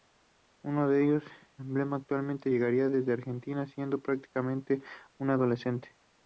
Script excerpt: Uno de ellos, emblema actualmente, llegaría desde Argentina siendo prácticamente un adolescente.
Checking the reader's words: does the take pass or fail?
pass